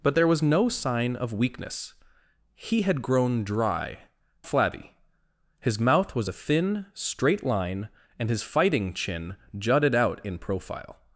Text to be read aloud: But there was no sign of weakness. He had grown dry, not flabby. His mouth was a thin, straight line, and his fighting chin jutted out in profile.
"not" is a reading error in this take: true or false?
true